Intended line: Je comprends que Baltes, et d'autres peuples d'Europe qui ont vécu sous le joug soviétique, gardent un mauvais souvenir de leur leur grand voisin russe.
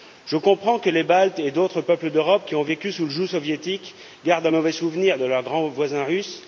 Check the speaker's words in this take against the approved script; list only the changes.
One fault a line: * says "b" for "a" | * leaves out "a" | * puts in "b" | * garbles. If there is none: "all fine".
* puts in "les"
* leaves out "leur"